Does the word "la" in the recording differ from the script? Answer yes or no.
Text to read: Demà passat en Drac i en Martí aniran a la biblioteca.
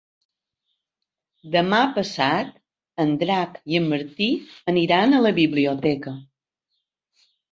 no